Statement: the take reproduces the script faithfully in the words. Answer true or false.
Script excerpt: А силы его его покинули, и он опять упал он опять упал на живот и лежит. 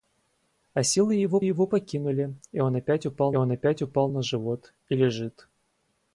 true